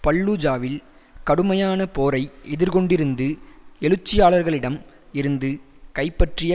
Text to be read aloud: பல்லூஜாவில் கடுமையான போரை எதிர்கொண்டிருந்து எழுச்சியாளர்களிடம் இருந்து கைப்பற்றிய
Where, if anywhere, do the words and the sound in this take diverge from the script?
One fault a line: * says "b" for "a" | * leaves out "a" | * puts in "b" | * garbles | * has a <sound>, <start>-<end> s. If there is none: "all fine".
all fine